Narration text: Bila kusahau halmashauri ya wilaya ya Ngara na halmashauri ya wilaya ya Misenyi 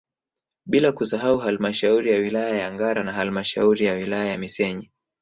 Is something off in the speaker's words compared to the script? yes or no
no